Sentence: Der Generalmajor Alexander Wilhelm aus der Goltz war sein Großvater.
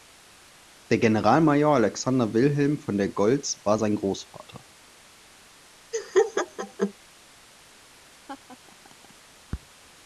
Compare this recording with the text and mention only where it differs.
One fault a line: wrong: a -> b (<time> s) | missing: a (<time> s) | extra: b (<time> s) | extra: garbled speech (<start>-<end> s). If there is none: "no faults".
wrong: aus -> von (2.8 s)